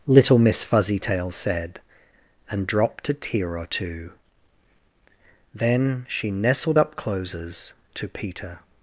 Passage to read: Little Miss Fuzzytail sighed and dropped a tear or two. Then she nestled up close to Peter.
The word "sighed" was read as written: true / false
false